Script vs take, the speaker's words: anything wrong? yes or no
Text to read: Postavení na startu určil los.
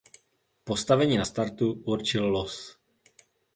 no